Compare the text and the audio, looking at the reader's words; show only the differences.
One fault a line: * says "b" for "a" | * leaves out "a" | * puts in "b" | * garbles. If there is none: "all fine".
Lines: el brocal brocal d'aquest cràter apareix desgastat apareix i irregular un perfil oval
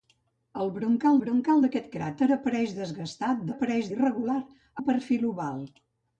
all fine